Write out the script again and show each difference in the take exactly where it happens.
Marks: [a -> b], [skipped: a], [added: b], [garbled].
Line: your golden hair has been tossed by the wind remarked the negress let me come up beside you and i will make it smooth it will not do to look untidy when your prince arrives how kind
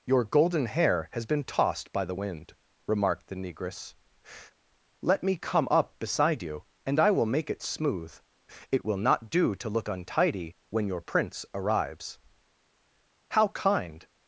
your golden hair has been tossed by the wind remarked the negress let me come up beside you and i will make it smooth it will not do to look untidy when your prince arrives how kind